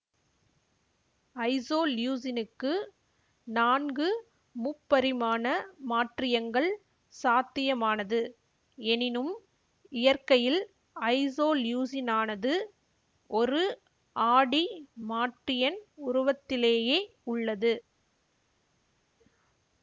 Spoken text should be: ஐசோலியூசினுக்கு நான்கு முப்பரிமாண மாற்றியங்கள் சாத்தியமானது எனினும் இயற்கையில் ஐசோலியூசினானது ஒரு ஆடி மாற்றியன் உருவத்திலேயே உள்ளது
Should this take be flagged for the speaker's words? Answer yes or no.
no